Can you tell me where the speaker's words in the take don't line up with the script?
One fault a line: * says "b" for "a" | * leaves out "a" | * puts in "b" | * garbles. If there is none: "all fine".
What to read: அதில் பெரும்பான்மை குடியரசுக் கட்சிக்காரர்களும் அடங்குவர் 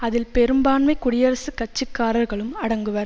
all fine